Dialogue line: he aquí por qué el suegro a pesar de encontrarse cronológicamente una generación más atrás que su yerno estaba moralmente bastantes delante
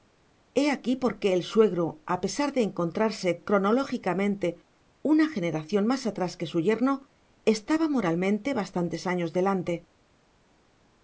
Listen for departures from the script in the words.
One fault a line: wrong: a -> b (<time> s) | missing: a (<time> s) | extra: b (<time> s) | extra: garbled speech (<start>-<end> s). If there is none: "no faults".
extra: años (9.1 s)